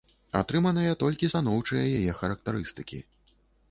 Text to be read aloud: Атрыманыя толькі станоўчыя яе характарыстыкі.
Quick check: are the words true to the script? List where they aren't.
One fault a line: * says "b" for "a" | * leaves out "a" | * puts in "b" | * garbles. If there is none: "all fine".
all fine